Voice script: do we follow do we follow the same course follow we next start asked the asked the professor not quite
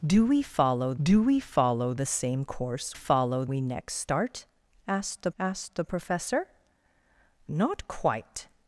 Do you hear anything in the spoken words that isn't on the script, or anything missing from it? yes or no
no